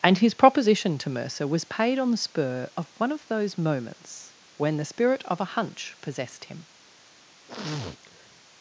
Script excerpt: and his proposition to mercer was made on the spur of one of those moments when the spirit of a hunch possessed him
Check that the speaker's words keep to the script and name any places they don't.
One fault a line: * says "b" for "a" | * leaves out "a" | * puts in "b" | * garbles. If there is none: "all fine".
* says "paid" for "made"